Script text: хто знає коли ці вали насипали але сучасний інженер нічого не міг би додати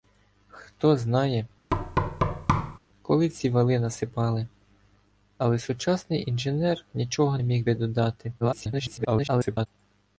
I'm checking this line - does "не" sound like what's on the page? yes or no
no